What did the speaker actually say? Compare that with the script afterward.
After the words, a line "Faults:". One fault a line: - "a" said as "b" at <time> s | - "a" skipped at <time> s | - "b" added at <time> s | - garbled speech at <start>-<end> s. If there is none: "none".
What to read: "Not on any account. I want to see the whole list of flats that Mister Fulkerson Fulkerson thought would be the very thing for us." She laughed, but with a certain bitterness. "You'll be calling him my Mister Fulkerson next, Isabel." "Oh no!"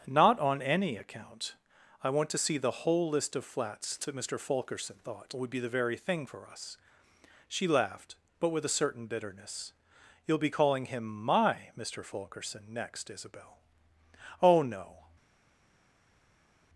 "Not on any account. I want to see the whole list of flats that Mister Fulkerson thought would be the very thing for us." She laughed, but with a certain bitterness. "You'll be calling him my Mister Fulkerson next, Isabel." "Oh no!"
Faults:
- "Fulkerson" skipped at 5.0 s